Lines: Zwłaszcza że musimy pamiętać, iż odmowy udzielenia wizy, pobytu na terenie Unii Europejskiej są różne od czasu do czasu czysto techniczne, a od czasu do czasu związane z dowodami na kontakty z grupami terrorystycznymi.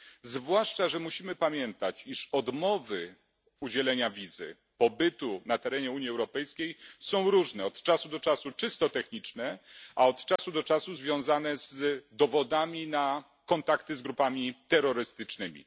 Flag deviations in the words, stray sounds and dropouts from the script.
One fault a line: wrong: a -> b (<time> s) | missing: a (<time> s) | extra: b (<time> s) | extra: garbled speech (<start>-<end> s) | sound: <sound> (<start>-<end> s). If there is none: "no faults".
sound: dropout (10.4-10.4 s)